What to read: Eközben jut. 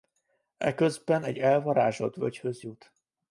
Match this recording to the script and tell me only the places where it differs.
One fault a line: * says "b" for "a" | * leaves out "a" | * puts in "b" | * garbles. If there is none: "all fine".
* puts in "egy elvarázsolt völgyhöz"